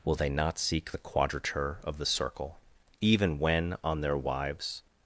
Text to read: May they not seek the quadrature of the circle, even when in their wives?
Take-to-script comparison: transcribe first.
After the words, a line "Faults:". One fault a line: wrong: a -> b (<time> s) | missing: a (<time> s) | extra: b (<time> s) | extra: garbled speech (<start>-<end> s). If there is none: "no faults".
Will they not seek the quadrature of the circle, even when on their wives?
Faults:
wrong: May -> Will (0.0 s)
wrong: in -> on (3.8 s)